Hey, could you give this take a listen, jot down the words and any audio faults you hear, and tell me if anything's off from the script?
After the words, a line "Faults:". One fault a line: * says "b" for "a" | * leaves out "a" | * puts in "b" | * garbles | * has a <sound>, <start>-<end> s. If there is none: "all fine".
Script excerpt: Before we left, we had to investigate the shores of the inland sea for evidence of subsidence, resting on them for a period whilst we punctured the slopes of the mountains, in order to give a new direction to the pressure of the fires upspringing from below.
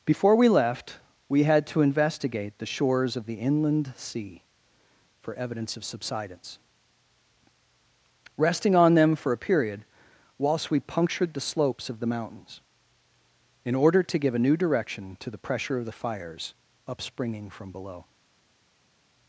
Before we left, we had to investigate the shores of the inland sea for evidence of subsidence, resting on them for a period whilst we punctured the slopes of the mountains, in order to give a new direction to the pressure of the fires upspringing from below.
Faults:
all fine